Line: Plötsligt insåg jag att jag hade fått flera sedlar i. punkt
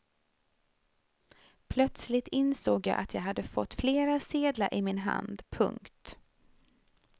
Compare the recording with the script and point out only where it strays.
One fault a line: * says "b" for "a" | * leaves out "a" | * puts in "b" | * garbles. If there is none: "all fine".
* puts in "min hand"